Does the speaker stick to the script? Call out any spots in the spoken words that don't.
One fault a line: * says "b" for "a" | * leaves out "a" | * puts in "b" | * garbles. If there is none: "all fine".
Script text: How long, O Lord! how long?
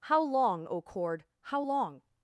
* says "Cord" for "Lord"